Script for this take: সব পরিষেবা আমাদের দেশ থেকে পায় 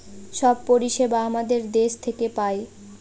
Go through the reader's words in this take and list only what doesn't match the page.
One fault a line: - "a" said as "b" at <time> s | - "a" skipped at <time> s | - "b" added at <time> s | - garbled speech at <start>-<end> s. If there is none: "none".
none